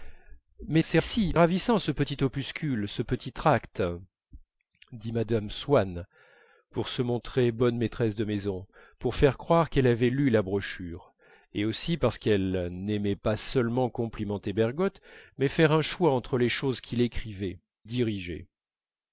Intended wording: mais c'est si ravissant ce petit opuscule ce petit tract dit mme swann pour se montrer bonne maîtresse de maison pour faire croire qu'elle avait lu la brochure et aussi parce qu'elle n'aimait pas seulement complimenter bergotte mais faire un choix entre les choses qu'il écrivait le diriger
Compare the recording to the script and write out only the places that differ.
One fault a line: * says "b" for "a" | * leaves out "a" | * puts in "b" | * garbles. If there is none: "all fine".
* leaves out "le"